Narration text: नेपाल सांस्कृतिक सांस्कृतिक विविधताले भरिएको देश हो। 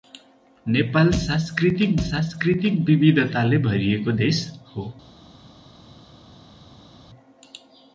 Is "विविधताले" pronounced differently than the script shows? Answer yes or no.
no